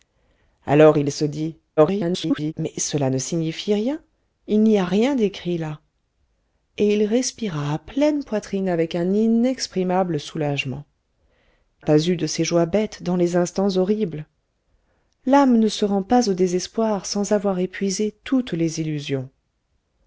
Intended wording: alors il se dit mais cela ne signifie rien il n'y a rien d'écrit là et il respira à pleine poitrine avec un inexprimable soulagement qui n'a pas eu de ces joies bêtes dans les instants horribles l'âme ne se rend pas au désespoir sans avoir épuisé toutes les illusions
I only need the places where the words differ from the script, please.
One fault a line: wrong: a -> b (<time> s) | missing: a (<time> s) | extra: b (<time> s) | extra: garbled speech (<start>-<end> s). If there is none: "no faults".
extra: garbled speech (1.8-2.5 s)
missing: qui n'a (10.8 s)